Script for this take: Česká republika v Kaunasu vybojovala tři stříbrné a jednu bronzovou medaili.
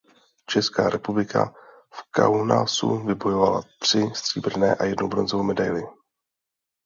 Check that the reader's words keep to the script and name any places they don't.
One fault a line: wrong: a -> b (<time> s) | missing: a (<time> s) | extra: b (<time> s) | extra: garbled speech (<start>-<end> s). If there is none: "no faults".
no faults